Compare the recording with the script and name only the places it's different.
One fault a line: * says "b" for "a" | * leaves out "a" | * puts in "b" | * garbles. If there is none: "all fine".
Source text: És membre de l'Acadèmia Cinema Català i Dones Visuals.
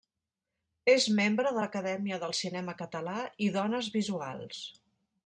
* puts in "del"